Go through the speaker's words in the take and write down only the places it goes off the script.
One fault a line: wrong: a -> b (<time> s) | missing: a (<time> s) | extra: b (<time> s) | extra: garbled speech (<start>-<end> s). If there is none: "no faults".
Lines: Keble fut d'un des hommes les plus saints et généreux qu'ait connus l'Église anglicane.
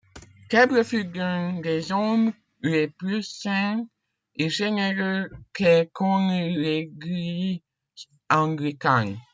no faults